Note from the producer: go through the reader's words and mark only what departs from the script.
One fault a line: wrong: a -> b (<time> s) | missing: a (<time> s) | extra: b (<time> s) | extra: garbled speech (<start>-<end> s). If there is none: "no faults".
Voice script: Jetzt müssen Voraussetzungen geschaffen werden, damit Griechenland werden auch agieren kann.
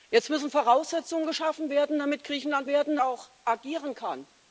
no faults